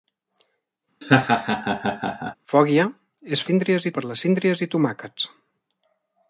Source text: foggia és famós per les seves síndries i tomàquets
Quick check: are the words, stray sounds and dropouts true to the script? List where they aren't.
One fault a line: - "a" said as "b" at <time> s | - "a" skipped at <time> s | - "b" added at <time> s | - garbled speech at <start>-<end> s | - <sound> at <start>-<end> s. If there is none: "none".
- laugh at 1.0-2.4 s
- "famós" said as "síndries" at 3.5 s
- "seves" skipped at 4.2 s